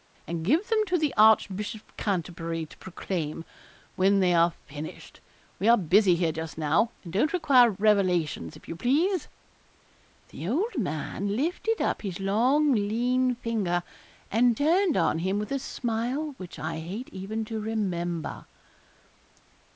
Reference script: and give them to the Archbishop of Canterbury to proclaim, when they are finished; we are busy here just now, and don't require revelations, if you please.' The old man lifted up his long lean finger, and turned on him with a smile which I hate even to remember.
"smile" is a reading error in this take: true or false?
false